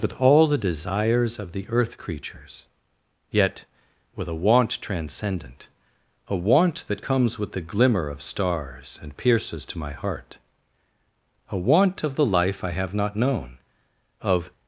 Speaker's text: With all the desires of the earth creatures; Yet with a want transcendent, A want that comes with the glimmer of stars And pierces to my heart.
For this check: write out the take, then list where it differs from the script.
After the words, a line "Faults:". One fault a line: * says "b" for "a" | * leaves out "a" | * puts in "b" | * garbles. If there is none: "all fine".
With all the desires of the earth creatures; Yet with a want transcendent, A want that comes with the glimmer of stars And pierces to my heart. A want of the life I have not known, Of
Faults:
* puts in "A want of the life I have not known Of"